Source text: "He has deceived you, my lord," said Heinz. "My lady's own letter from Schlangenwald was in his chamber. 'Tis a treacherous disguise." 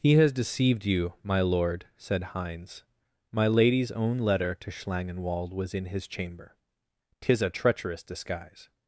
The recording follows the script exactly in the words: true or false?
false